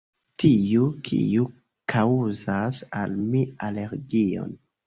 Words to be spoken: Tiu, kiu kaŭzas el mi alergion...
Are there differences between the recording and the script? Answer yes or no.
yes